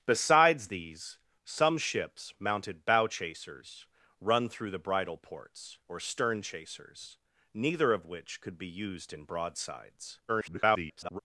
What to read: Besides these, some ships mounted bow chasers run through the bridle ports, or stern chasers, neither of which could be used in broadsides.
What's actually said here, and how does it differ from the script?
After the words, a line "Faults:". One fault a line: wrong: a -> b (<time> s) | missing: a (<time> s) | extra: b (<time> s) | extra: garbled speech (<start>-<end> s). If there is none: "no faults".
Besides these, some ships mounted bow chasers run through the bridle ports, or stern chasers, neither of which could be used in broadsides. [garbled]
Faults:
extra: garbled speech (10.3-11.2 s)